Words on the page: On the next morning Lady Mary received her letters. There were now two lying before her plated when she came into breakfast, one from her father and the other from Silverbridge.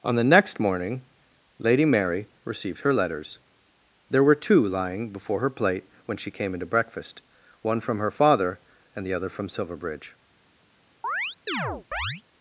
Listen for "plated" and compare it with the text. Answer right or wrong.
wrong